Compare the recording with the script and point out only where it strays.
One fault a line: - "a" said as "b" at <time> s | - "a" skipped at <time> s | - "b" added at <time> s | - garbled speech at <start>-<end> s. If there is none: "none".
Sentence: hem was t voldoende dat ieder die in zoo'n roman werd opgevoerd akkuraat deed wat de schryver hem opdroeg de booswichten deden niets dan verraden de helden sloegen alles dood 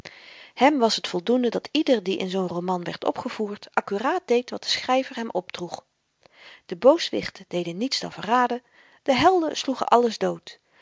none